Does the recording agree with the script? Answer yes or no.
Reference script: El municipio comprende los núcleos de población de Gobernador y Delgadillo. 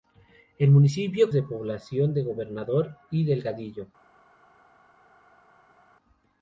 no